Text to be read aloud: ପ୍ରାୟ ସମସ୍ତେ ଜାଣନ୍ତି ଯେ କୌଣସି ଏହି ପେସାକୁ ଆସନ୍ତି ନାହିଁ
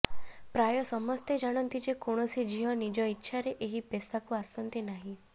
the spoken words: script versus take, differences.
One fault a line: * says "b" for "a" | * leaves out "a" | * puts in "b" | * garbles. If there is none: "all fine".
* puts in "ଝିଅ ନିଜ ଇଚ୍ଛାରେ"